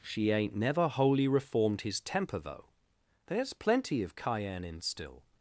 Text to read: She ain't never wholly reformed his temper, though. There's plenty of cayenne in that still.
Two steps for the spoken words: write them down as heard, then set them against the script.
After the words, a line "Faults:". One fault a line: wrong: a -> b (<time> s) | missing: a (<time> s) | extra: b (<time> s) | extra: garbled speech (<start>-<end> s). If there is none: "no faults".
She ain't never wholly reformed his temper, though. There's plenty of cayenne in still.
Faults:
missing: that (4.8 s)